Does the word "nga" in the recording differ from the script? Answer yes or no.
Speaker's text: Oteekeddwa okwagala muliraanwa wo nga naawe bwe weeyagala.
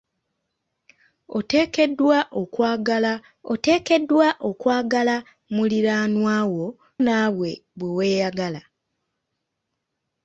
yes